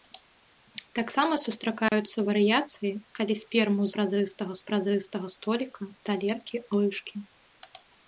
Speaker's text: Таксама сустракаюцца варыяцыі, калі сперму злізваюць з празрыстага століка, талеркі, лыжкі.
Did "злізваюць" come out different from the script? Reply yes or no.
yes